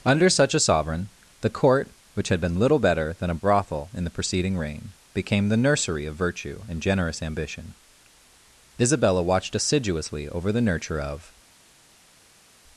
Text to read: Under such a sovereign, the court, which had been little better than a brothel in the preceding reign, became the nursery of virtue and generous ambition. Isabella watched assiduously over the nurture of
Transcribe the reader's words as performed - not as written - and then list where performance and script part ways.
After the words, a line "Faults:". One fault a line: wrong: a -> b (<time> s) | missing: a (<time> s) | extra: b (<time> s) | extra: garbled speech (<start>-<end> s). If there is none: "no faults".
Under such a sovereign, the court, which had been little better than a brothel in the preceding reign, became the nursery of virtue and generous ambition. Isabella watched assiduously over the nurture of
Faults:
no faults